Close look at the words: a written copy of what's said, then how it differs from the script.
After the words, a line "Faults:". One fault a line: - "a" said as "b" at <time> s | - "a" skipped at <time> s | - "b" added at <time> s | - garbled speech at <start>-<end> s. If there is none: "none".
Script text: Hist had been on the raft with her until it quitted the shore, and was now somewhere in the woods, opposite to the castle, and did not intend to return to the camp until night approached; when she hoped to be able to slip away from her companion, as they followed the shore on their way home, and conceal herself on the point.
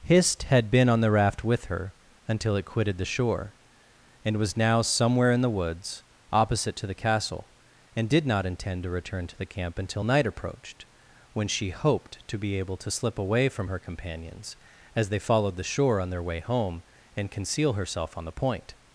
Hist had been on the raft with her until it quitted the shore, and was now somewhere in the woods, opposite to the castle, and did not intend to return to the camp until night approached; when she hoped to be able to slip away from her companions, as they followed the shore on their way home, and conceal herself on the point.
Faults:
- "companion" said as "companions" at 13.8 s